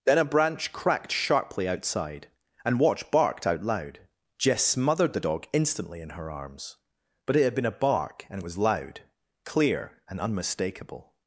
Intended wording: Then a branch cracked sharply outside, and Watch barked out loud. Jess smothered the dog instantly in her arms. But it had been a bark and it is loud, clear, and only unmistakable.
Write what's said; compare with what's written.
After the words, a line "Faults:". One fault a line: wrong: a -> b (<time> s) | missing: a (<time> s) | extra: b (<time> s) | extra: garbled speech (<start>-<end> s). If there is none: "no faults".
Then a branch cracked sharply outside, and Watch barked out loud. Jess smothered the dog instantly in her arms. But it had been a bark and it was loud, clear, and unmistakable.
Faults:
wrong: is -> was (8.4 s)
missing: only (10.2 s)